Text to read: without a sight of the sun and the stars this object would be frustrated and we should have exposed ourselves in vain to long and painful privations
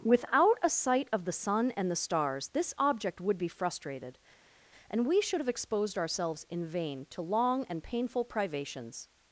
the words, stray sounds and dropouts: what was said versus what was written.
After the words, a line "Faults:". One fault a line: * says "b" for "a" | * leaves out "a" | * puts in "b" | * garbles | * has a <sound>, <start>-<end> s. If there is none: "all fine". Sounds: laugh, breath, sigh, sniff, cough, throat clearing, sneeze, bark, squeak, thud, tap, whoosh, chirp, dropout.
without a sight of the sun and the stars this object would be frustrated and we should have exposed ourselves in vain to long and painful privations
Faults:
all fine